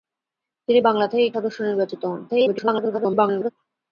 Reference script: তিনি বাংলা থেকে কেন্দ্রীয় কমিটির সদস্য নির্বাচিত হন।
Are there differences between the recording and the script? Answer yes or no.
yes